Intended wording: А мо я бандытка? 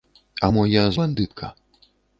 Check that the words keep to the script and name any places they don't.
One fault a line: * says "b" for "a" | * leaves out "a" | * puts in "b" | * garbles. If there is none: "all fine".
all fine